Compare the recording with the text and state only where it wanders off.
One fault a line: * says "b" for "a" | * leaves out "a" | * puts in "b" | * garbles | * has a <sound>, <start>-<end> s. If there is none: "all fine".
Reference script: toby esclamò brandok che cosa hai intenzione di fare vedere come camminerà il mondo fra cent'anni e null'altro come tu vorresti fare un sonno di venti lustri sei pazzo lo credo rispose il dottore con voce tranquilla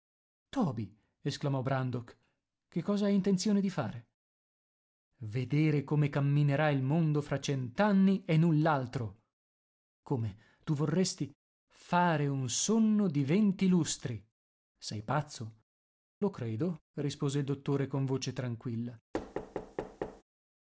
* has a thud, 19.1-20.2 s